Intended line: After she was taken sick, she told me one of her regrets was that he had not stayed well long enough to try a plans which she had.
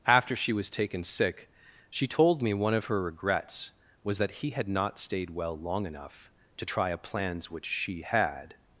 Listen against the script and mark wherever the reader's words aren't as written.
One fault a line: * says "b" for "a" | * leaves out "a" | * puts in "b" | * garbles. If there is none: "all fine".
all fine